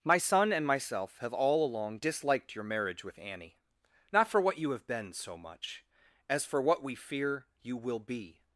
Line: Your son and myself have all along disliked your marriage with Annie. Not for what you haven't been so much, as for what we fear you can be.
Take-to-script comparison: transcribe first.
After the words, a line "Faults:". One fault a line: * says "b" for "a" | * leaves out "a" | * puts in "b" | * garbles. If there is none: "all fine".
My son and myself have all along disliked your marriage with Annie. Not for what you have been so much, as for what we fear you will be.
Faults:
* says "My" for "Your"
* says "have" for "haven't"
* says "will" for "can"